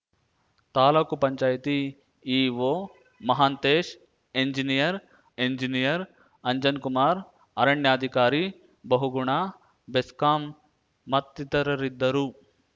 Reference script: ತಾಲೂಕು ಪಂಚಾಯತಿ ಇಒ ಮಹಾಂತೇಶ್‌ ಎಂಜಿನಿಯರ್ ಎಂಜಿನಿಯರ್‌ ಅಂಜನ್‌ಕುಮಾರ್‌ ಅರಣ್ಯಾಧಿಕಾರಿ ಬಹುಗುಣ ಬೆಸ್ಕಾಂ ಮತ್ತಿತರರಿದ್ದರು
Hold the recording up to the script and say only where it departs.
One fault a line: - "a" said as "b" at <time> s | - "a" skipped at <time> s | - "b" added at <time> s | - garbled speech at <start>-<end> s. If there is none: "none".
none